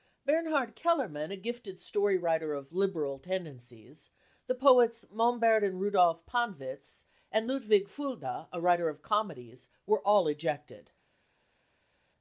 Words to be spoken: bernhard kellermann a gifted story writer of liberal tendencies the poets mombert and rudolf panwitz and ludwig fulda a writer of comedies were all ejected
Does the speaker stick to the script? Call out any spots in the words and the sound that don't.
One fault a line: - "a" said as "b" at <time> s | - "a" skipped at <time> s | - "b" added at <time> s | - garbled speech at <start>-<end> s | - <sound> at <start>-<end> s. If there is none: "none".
none